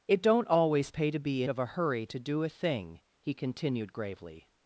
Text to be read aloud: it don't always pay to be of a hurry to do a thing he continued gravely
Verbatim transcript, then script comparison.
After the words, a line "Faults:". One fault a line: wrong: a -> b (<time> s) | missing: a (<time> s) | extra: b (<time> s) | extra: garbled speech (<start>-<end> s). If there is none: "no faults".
it don't always pay to be of a hurry to do a thing he continued gravely
Faults:
no faults